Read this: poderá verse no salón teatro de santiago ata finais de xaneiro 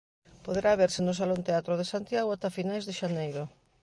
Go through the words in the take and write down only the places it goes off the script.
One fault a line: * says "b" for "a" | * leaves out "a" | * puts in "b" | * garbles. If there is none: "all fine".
all fine